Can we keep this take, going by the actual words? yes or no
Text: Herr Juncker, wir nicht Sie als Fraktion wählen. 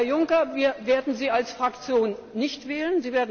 no